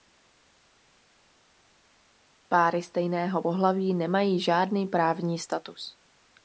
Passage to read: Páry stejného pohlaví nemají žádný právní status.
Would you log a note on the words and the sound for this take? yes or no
no